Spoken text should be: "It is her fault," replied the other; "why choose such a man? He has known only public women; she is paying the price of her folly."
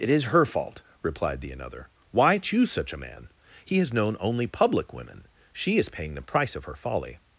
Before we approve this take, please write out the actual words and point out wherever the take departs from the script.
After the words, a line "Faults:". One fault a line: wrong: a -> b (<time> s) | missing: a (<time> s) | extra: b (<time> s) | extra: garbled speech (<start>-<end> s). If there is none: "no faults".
"It is her fault," replied the another; "why choose such a man? He has known only public women; she is paying the price of her folly."
Faults:
wrong: other -> another (1.5 s)